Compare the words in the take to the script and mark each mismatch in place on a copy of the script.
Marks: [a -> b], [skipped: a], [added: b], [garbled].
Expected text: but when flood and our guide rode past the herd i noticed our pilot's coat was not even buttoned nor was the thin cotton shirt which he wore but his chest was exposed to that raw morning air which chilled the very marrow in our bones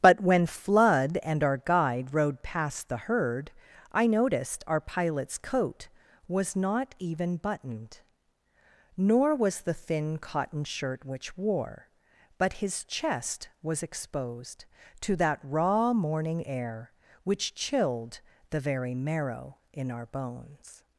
but when flood and our guide rode past the herd i noticed our pilot's coat was not even buttoned nor was the thin cotton shirt which [skipped: he] wore but his chest was exposed to that raw morning air which chilled the very marrow in our bones